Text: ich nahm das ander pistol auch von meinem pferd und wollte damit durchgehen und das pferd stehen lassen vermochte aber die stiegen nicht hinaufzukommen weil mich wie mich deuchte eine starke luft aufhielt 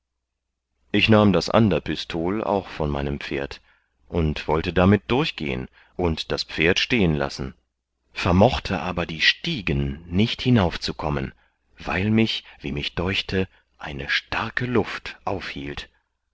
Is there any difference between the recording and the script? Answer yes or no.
no